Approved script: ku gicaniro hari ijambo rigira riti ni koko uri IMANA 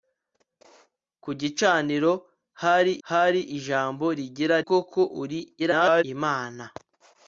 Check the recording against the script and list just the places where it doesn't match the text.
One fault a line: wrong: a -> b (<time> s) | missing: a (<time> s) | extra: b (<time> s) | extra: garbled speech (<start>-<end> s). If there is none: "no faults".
extra: hari (3.1 s)
missing: riti ni (4.6 s)
extra: garbled speech (5.6-6.0 s)